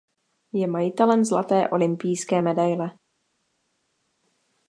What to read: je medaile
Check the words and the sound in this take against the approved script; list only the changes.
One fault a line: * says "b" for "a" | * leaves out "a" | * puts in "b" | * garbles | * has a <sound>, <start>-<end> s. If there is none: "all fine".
* puts in "majitelem zlaté olympijské"